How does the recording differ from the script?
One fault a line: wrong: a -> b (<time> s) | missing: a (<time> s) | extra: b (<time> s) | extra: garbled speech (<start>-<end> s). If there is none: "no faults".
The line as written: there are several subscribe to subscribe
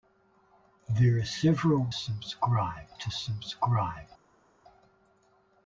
no faults